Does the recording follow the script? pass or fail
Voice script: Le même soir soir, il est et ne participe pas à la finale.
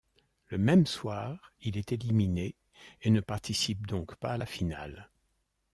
fail